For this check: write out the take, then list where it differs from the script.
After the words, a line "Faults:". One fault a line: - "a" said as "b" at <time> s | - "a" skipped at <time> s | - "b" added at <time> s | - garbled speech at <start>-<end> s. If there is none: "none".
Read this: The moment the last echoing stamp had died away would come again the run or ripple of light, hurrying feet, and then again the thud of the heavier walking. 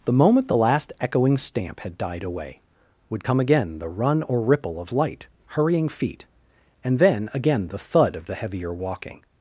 The moment the last echoing stamp had died away would come again the run or ripple of light, hurrying feet, and then again the thud of the heavier walking.
Faults:
none